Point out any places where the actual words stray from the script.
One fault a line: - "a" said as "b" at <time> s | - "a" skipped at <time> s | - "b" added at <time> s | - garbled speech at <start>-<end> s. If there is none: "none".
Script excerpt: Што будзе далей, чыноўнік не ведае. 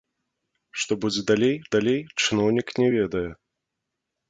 - "далей" added at 1.8 s